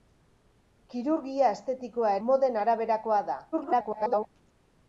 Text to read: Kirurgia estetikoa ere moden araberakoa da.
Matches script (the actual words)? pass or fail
fail